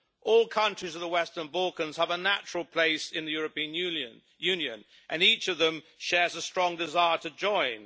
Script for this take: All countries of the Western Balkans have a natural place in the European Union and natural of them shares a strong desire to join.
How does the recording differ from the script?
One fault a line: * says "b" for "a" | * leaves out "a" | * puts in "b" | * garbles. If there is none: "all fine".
* says "each" for "natural"